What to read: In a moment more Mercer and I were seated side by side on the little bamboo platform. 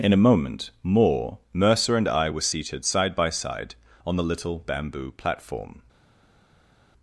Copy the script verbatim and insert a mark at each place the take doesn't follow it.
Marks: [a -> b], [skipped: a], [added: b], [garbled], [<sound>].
In a moment more Mercer and I were seated side by side on the little bamboo platform.